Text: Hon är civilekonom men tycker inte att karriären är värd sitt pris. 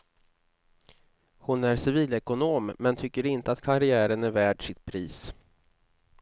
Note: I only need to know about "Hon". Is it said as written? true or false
true